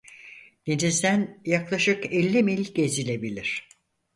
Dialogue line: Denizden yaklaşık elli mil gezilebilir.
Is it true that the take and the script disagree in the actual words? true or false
false